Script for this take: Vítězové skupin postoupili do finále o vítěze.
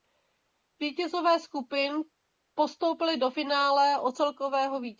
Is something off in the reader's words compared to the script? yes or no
yes